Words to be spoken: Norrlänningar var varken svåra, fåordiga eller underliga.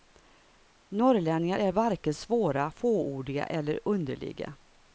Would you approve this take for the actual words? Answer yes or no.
no